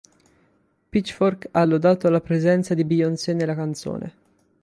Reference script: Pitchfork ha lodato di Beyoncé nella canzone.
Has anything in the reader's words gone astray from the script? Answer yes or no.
yes